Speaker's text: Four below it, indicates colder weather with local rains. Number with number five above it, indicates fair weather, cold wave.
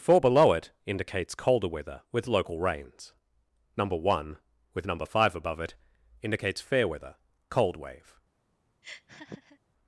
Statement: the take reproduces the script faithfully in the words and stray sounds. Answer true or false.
false